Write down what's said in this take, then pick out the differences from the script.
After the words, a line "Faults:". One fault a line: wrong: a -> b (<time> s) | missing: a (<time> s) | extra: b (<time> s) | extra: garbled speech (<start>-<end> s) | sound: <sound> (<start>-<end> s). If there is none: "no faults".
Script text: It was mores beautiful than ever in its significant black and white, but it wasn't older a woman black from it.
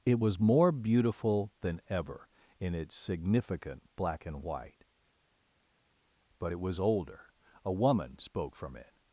It was more beautiful than ever in its significant black and white, but it was older a woman spoke from it.
Faults:
wrong: mores -> more (0.4 s)
wrong: wasn't -> was (6.6 s)
wrong: black -> spoke (8.2 s)